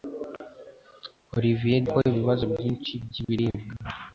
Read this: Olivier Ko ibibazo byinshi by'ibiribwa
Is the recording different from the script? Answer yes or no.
no